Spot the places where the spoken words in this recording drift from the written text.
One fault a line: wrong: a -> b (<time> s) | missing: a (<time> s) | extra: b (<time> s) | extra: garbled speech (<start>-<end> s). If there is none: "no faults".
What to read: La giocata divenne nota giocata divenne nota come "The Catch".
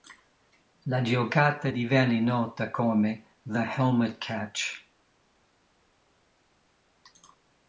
missing: giocata divenne nota (2.7 s)
extra: Helmet (3.7 s)